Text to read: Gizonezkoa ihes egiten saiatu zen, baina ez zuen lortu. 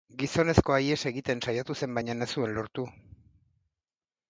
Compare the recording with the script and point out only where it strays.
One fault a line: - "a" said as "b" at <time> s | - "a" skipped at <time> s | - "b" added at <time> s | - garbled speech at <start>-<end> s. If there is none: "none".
none